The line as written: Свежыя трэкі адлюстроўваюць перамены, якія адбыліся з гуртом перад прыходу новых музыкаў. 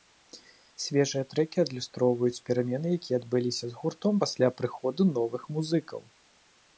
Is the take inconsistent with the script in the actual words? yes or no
yes